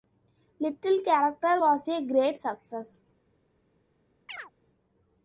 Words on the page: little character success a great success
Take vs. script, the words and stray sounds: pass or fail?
fail